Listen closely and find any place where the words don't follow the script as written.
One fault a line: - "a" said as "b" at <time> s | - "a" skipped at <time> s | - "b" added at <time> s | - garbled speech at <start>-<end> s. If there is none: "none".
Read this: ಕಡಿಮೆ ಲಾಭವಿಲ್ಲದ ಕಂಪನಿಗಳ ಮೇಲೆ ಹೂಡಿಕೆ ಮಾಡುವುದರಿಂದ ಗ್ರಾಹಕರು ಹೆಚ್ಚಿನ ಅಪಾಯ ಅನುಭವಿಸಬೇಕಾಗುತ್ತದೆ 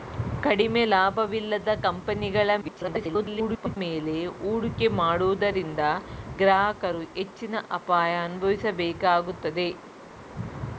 - garbled speech at 2.6-3.8 s